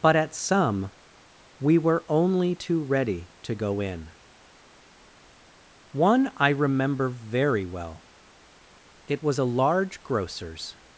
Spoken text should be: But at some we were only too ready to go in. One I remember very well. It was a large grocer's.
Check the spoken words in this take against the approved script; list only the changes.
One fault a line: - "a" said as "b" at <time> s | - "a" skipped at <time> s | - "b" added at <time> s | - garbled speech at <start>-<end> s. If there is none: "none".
none